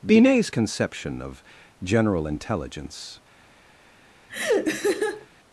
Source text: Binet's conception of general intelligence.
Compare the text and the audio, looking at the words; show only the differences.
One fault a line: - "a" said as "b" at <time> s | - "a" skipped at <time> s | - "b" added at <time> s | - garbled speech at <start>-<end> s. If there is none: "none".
none